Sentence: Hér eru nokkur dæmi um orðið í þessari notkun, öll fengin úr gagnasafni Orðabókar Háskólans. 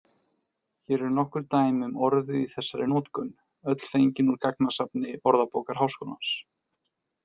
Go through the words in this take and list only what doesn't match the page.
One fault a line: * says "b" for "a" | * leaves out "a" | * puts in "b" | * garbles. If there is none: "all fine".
all fine